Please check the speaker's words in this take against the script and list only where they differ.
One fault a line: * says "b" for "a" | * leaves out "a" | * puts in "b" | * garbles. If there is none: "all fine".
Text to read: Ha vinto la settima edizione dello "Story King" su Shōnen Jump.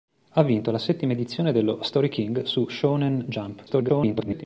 * garbles